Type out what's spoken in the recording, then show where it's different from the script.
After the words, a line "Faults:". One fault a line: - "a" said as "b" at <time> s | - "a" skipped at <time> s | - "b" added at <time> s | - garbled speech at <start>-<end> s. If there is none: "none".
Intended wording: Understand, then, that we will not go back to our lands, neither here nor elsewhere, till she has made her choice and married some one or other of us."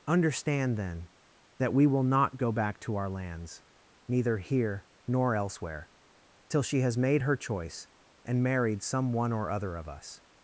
Understand, then, that we will not go back to our lands, neither here nor elsewhere, till she has made her choice and married some one or other of us."
Faults:
none